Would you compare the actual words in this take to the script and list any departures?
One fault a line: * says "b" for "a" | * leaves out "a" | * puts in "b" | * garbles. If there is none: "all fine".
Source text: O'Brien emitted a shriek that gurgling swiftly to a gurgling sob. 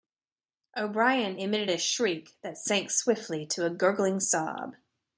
* says "sank" for "gurgling"